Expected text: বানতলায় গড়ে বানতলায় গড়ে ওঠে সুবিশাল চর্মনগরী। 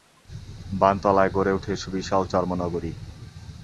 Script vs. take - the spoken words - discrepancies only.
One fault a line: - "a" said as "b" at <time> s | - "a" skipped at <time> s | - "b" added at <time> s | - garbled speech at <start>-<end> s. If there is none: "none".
- "বানতলায় গড়ে" skipped at 1.5 s